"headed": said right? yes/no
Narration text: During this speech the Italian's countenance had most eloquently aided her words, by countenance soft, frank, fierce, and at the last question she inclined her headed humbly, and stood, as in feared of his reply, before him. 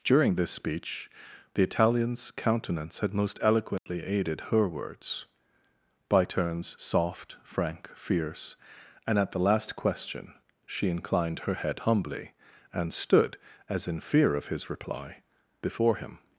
no